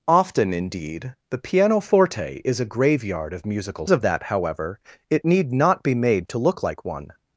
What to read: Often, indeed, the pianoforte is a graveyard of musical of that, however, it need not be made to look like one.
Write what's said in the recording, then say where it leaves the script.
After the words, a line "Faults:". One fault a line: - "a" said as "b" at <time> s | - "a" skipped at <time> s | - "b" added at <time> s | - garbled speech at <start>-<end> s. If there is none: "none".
Often, indeed, the pianoforte is a graveyard of musical of that, however, it need not be made to look like one.
Faults:
none